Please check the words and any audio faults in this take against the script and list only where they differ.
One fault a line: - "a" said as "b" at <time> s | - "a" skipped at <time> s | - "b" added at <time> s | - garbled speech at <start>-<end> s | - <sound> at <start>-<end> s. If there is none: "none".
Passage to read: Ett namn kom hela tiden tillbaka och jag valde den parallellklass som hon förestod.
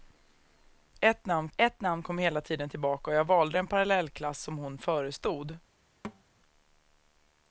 - "ett namn" added at 1.6 s
- thud at 6.0-6.2 s